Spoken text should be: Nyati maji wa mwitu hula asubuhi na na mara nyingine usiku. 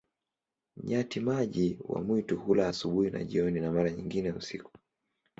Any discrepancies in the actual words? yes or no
yes